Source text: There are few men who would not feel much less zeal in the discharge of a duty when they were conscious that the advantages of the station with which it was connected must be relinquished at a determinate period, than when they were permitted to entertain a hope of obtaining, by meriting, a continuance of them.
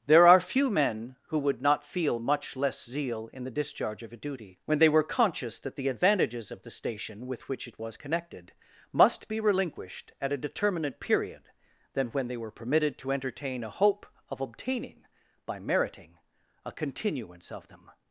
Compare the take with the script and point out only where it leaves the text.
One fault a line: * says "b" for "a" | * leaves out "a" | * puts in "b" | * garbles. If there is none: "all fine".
all fine